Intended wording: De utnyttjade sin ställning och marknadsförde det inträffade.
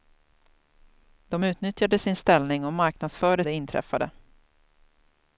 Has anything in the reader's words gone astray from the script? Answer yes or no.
no